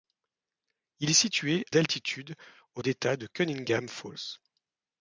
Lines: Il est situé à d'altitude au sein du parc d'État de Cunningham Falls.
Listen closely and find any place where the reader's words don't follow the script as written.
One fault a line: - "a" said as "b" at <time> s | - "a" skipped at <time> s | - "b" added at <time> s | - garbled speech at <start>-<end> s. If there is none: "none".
- "à" skipped at 1.6 s
- "sein du parc" skipped at 2.8 s